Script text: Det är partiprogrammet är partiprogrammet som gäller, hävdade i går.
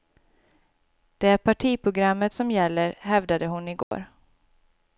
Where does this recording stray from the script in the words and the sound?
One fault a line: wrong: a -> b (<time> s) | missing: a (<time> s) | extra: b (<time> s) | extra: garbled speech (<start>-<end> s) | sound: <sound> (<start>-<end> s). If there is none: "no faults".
missing: är partiprogrammet (2.3 s)
extra: hon (3.5 s)
sound: dropout (3.8-3.9 s)